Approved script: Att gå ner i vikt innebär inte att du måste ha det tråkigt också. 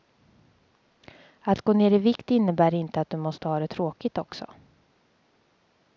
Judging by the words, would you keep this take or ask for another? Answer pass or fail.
pass